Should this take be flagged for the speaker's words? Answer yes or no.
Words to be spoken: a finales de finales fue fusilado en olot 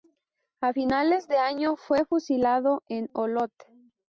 yes